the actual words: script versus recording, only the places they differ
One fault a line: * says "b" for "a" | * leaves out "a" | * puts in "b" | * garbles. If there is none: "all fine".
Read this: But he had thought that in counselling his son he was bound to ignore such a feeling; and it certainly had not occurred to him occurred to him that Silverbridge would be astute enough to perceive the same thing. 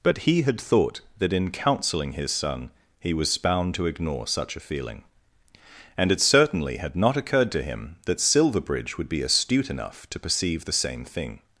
* leaves out "occurred to him"